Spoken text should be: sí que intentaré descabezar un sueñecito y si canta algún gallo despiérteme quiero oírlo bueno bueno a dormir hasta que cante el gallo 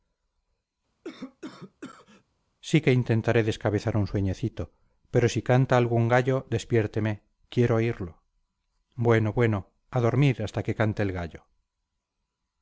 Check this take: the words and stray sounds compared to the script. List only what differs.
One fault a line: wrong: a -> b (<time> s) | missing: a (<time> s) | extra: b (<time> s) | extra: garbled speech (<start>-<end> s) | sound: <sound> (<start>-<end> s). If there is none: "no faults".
sound: cough (1.0-2.2 s)
wrong: y -> pero (5.1 s)